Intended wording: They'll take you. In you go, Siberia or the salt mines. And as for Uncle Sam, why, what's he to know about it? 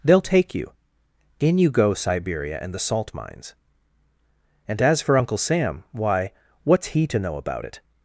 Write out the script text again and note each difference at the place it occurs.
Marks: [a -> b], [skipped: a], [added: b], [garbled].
They'll take you. In you go, Siberia [or -> and] the salt mines. And as for Uncle Sam, why, what's he to know about it?